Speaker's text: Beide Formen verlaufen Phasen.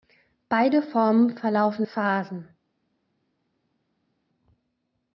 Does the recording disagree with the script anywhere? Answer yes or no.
no